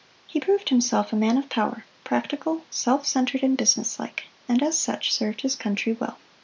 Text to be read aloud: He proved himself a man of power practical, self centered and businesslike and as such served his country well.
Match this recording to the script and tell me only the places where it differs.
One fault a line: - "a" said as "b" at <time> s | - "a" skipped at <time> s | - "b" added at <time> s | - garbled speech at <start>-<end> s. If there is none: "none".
none